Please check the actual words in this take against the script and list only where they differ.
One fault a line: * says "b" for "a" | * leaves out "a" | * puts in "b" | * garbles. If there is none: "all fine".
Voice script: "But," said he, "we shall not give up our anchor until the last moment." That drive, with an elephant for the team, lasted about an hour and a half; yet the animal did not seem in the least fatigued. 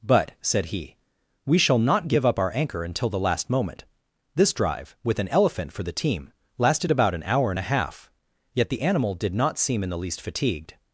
* says "This" for "That"